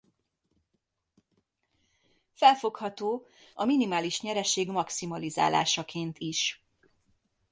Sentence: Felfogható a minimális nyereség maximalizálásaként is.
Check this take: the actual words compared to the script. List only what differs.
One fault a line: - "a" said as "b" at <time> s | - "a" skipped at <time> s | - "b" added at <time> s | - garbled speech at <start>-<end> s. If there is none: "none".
none